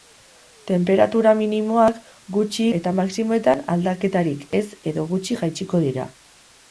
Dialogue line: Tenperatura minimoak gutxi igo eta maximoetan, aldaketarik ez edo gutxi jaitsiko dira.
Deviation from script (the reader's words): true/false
true